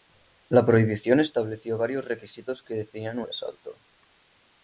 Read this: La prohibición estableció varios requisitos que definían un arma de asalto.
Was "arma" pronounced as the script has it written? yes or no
no